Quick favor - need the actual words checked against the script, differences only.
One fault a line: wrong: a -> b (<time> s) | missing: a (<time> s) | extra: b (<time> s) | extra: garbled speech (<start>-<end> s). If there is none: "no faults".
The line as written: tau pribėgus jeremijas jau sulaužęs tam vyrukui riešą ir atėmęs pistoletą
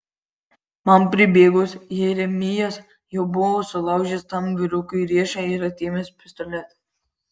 wrong: tau -> man (0.9 s)
extra: buvo (3.4 s)